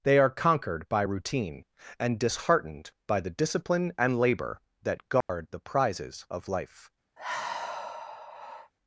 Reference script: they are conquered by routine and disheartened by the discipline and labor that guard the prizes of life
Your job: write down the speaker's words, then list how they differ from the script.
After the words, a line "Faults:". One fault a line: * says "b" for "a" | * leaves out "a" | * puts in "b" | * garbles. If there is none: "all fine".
they are conquered by routine and disheartened by the discipline and labor that guard the prizes of life
Faults:
all fine